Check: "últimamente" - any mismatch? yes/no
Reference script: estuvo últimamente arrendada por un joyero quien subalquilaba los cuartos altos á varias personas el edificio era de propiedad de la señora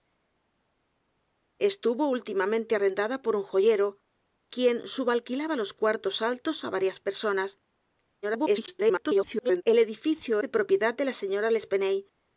no